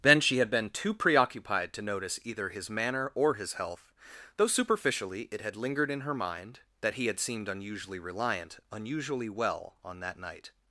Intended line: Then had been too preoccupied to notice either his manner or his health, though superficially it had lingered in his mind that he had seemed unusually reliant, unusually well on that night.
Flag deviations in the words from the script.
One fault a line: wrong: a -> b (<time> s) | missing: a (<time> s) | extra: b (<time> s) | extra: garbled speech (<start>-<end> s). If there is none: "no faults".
extra: she (0.2 s)
wrong: his -> her (6.0 s)